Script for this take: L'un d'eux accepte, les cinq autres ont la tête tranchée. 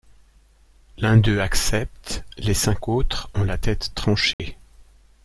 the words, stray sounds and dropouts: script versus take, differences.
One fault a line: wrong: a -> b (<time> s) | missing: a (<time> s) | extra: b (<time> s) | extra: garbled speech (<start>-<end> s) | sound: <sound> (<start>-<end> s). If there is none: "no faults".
sound: dropout (4.3-4.4 s)